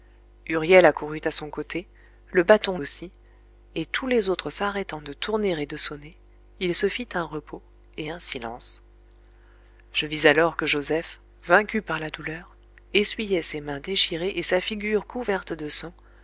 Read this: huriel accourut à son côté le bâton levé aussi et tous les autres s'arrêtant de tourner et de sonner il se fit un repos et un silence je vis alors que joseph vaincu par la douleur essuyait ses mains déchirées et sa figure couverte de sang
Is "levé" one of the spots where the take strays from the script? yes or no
yes